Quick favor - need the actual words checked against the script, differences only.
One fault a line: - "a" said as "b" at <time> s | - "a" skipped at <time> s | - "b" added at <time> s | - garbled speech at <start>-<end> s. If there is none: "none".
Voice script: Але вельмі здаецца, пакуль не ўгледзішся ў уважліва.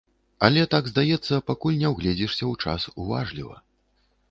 - "вельмі" said as "так" at 0.7 s
- "час" added at 2.7 s